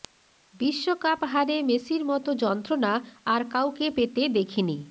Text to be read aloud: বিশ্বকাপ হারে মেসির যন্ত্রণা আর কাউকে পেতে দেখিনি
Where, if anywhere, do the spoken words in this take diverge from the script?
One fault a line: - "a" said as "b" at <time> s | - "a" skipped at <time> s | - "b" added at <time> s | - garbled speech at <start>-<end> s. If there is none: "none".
- "মতো" added at 2.0 s